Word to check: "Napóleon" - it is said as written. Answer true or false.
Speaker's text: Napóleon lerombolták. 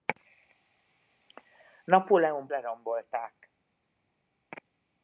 true